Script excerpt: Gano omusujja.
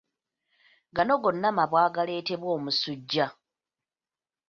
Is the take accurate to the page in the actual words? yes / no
no